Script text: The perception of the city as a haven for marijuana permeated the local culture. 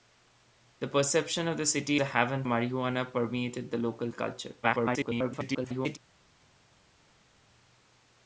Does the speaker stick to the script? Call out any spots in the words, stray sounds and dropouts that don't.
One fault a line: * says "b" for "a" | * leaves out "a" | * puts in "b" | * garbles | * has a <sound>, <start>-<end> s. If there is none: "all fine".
* leaves out "as"
* leaves out "for"
* garbles